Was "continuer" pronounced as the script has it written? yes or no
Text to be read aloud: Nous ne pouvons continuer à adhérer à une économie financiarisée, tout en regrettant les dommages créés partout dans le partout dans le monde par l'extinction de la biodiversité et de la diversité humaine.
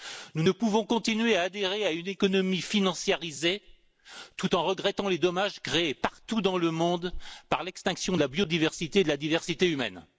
yes